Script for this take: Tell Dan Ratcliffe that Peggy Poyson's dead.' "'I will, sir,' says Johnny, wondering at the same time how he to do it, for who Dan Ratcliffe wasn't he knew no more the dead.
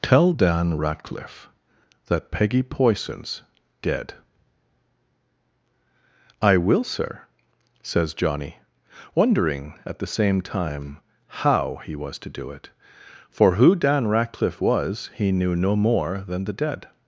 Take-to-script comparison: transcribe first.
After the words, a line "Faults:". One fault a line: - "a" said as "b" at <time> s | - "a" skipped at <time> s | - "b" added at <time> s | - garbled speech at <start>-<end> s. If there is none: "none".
Tell Dan Ratcliffe that Peggy Poyson's dead.' "'I will, sir,' says Johnny, wondering at the same time how he was to do it, for who Dan Ratcliffe was he knew no more than the dead.
Faults:
- "was" added at 11.9 s
- "wasn't" said as "was" at 14.6 s
- "than" added at 16.3 s